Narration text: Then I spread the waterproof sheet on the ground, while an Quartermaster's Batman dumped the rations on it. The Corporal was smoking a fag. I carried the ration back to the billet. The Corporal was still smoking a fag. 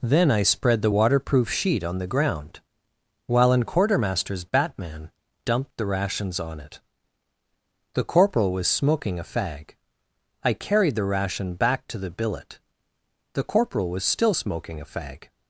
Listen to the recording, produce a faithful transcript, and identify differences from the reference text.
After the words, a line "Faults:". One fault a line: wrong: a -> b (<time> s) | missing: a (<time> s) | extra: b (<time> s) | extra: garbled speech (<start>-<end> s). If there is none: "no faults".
Then I spread the waterproof sheet on the ground, while an Quartermaster's Batman dumped the rations on it. The Corporal was smoking a fag. I carried the ration back to the billet. The Corporal was still smoking a fag.
Faults:
no faults